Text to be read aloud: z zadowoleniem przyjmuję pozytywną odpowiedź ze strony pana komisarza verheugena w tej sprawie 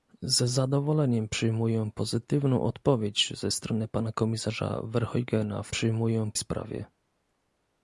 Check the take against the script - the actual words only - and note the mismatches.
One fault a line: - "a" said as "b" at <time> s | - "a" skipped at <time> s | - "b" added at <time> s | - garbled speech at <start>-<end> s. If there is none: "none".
- "tej" said as "przyjmuję" at 5.7 s